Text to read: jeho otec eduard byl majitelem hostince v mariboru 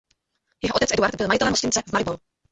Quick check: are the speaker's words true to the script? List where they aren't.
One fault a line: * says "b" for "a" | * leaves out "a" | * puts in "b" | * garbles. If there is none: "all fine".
all fine